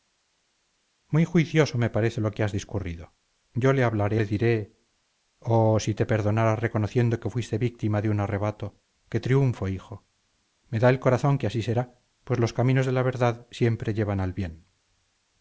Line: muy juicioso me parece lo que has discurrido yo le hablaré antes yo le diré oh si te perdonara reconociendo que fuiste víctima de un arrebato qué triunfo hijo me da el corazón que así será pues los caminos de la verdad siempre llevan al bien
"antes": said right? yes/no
no